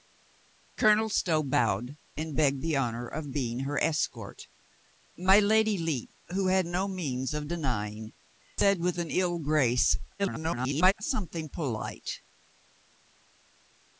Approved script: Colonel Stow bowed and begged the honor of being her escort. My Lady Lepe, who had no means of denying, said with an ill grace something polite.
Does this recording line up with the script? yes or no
no